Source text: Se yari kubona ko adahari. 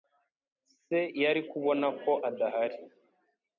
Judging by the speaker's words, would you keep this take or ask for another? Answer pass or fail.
pass